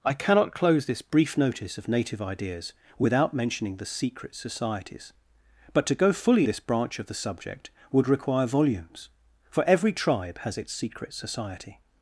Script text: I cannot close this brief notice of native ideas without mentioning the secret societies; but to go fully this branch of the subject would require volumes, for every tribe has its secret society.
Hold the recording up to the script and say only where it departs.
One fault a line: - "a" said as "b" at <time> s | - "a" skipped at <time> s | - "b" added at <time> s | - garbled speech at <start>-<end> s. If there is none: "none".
none